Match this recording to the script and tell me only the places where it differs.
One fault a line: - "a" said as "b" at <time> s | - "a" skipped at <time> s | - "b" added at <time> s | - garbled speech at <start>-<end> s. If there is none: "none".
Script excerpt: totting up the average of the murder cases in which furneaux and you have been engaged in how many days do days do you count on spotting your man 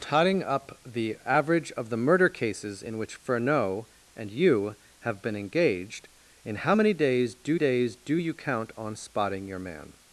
none